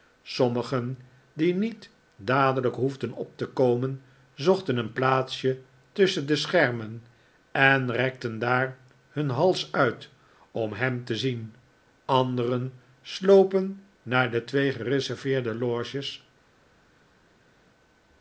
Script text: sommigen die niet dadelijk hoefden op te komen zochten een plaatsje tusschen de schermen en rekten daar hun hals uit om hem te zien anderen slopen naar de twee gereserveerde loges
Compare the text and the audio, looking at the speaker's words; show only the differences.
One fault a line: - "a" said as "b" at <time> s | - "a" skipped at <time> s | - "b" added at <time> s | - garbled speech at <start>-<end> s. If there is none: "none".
none